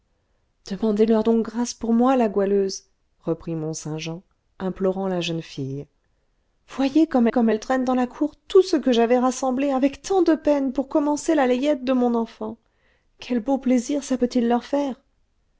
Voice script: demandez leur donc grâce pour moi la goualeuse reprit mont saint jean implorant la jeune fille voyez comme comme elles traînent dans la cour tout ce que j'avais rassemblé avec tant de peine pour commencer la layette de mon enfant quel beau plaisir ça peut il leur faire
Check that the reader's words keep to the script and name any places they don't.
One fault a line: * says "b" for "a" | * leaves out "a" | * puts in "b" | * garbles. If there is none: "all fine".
all fine